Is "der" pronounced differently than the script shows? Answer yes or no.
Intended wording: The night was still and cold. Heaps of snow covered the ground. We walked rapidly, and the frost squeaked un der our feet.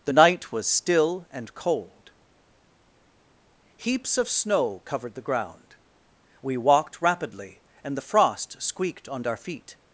yes